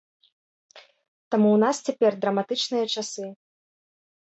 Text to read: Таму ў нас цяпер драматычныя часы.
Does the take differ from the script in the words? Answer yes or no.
no